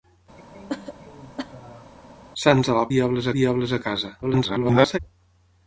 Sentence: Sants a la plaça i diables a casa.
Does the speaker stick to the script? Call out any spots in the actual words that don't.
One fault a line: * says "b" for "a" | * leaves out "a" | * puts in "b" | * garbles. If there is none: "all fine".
* says "diables" for "plaça"
* garbles